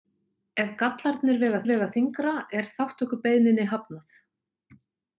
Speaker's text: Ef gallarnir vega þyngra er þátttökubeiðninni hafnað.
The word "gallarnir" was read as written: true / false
true